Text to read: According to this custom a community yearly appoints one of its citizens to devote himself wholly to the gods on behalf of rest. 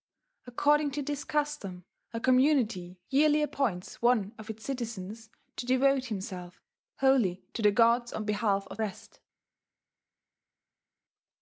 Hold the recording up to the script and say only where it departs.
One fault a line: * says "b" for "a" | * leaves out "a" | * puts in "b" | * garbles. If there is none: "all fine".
all fine